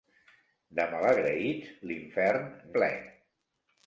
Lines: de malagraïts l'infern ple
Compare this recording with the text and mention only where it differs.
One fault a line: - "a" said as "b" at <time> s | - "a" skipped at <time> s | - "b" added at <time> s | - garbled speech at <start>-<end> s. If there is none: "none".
none